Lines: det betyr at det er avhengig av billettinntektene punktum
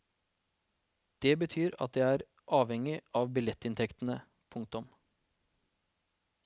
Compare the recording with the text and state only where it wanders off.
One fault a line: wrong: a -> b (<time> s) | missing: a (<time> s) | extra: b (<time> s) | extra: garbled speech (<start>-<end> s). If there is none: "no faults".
no faults